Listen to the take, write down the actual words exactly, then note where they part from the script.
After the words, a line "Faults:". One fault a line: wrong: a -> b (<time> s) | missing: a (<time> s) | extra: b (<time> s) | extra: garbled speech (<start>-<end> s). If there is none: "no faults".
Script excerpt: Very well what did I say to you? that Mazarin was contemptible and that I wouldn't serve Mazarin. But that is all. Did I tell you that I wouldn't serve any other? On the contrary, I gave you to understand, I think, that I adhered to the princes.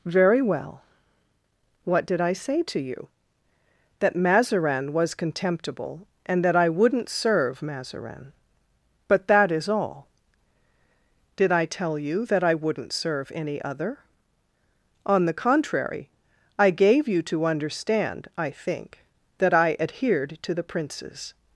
Very well what did I say to you? that Mazarin was contemptible and that I wouldn't serve Mazarin. But that is all. Did I tell you that I wouldn't serve any other? On the contrary, I gave you to understand, I think, that I adhered to the princes.
Faults:
no faults